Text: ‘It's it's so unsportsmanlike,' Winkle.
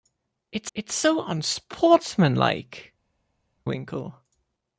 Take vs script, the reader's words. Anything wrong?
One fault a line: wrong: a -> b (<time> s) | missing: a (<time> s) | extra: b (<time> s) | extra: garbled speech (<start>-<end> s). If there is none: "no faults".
no faults